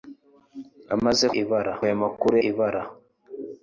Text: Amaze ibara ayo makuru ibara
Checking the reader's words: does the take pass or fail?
pass